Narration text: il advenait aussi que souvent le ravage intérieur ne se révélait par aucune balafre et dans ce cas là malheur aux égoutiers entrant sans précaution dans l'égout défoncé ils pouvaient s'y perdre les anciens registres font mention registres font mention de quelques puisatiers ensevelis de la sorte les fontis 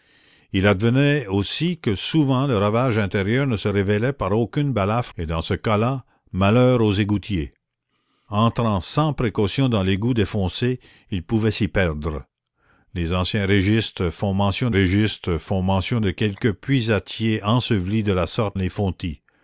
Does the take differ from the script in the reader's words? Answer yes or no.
no